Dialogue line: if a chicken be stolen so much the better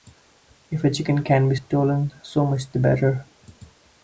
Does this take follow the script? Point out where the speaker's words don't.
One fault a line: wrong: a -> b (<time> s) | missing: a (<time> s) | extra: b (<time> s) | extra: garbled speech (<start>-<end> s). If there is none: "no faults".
extra: can (1.2 s)